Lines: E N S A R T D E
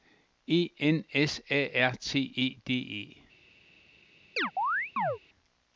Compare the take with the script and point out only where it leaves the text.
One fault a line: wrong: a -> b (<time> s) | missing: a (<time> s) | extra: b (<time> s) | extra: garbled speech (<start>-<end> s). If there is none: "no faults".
extra: E (2.4 s)